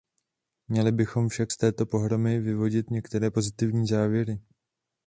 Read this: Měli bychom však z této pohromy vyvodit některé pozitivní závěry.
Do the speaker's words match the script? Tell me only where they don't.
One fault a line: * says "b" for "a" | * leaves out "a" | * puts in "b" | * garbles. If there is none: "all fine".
all fine